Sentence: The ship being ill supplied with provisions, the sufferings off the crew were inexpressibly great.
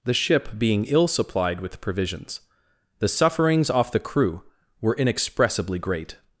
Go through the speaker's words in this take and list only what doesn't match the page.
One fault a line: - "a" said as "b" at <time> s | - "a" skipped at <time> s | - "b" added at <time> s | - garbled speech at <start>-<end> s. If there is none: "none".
none